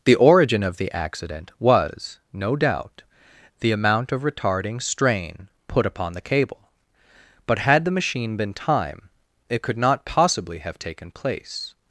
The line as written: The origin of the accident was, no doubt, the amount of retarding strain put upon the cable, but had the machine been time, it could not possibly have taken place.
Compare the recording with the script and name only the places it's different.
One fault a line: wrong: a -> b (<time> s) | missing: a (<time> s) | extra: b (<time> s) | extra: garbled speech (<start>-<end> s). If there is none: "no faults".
no faults